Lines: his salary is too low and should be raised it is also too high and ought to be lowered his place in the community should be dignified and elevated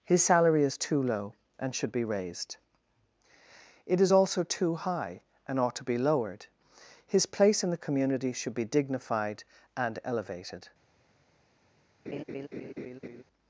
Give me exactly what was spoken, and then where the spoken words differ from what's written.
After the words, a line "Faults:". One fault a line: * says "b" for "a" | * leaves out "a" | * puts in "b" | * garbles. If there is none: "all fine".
his salary is too low and should be raised it is also too high and ought to be lowered his place in the community should be dignified and elevated
Faults:
all fine